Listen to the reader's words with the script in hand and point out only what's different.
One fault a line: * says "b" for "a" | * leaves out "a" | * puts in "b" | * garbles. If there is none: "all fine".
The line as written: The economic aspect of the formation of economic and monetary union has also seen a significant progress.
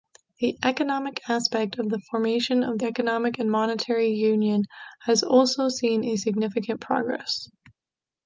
all fine